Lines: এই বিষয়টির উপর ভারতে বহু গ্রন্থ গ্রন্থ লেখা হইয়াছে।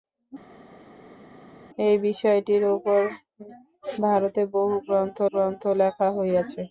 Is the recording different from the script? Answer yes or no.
no